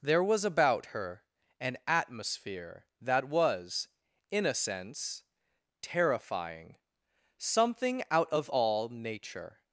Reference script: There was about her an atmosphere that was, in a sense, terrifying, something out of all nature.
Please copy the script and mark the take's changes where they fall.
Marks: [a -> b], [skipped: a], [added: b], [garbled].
There was about her an atmosphere that was, in a sense, terrifying, something out of all nature.